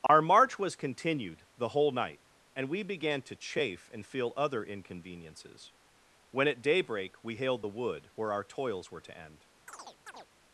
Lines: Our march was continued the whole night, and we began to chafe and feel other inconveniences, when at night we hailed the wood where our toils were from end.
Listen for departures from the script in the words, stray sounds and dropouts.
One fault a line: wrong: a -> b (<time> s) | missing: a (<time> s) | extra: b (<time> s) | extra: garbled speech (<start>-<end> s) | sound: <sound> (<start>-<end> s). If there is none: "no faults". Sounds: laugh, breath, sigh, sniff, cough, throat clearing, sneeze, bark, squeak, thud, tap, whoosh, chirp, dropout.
sound: dropout (0.1-0.1 s)
wrong: night -> daybreak (6.6 s)
wrong: from -> to (9.0 s)
sound: chirp (9.7-10.3 s)